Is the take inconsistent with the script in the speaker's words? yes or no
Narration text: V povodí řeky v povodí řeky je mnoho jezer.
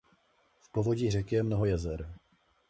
yes